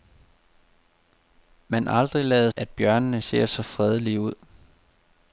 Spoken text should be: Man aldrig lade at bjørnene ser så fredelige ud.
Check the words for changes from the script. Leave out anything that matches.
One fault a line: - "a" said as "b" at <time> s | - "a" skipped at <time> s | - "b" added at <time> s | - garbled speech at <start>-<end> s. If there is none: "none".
none